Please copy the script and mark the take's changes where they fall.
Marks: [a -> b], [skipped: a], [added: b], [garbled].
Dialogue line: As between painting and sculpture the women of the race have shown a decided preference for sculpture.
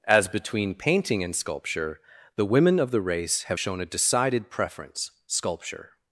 As between painting and sculpture the women of the race have shown a decided preference [skipped: for] sculpture.